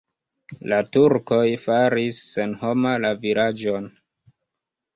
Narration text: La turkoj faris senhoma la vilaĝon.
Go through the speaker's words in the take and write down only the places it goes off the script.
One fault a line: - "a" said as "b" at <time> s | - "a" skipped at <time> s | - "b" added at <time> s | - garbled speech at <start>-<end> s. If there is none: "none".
none